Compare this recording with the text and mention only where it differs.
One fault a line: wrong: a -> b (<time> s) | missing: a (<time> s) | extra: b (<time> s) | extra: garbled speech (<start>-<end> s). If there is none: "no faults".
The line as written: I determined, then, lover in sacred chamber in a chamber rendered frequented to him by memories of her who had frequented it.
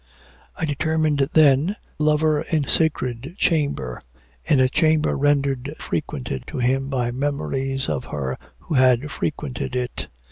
no faults